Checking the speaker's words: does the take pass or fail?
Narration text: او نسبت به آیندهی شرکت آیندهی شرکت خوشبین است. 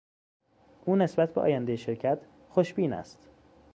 fail